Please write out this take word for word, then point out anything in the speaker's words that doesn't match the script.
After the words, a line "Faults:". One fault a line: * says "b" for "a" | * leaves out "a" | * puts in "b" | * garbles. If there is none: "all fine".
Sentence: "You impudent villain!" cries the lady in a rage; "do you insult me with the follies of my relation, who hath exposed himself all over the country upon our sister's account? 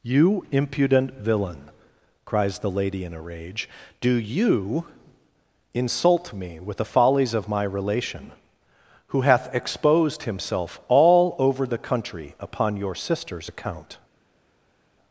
"You impudent villain!" cries the lady in a rage; "do you insult me with the follies of my relation, who hath exposed himself all over the country upon your sister's account?
Faults:
* says "your" for "our"